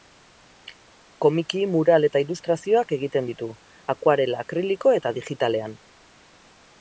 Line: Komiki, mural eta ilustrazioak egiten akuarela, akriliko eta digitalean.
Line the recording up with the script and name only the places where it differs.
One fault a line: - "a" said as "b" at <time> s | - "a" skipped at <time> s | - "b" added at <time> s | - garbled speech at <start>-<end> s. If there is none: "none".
- "ditu" added at 3.3 s